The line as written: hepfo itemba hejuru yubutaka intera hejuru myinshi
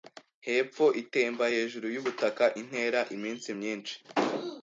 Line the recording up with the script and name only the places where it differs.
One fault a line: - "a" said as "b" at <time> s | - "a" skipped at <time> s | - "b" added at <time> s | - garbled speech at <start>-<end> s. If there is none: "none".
- "hejuru" said as "iminsi" at 3.2 s